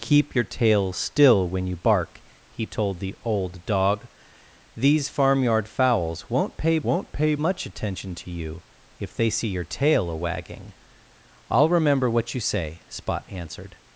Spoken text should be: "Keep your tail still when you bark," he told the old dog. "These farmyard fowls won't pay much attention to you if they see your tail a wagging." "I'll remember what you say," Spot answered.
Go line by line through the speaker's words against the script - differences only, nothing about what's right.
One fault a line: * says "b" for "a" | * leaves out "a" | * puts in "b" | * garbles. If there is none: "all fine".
* puts in "won't pay"